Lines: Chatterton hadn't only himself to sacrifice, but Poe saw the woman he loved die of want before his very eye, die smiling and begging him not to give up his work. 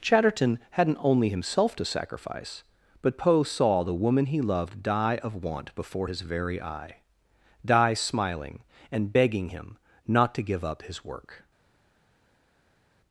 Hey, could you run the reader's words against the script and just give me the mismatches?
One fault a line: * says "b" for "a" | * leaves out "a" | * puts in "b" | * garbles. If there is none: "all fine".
all fine